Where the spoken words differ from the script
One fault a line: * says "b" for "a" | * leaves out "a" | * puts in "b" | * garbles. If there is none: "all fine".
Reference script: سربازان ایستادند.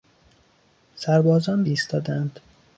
all fine